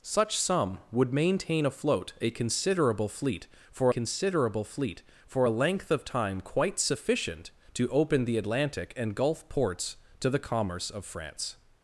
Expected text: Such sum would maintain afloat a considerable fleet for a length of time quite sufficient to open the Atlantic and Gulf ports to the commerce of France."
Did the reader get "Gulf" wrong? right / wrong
right